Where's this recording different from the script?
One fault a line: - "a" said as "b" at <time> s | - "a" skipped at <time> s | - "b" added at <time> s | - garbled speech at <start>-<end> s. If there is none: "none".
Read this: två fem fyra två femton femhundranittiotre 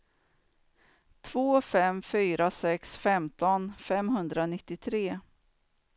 - "två" said as "sex" at 2.5 s